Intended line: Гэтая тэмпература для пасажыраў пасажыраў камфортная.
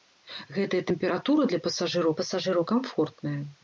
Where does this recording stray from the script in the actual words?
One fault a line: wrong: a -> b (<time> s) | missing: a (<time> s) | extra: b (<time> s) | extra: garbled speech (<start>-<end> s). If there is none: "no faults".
no faults